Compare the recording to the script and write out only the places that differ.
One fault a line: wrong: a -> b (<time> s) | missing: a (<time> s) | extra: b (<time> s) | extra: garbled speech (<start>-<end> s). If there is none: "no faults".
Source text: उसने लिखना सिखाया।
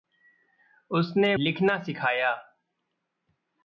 no faults